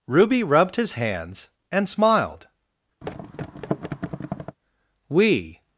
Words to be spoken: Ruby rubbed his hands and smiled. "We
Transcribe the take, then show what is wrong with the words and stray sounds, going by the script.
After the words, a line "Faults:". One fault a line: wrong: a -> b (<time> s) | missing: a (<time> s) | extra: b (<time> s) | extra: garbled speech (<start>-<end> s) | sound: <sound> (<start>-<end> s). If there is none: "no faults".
Ruby rubbed his hands and smiled. "We
Faults:
sound: thud (3.0-4.6 s)